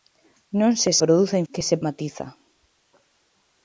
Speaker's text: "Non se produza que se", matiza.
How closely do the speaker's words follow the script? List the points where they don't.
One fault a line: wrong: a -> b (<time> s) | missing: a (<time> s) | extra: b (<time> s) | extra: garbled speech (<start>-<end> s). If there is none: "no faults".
no faults